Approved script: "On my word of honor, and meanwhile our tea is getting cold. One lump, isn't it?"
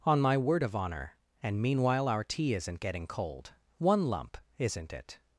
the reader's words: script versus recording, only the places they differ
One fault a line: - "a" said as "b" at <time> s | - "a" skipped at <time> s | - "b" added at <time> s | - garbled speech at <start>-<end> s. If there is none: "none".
- "is" said as "isn't" at 2.5 s